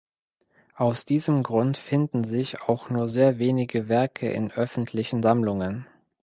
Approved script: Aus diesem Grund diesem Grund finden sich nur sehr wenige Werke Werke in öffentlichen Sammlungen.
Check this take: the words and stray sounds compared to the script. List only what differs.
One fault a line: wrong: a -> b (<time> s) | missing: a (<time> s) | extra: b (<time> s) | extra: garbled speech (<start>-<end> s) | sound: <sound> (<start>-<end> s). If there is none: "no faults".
missing: diesem Grund (1.8 s)
extra: auch (2.6 s)
missing: Werke (4.3 s)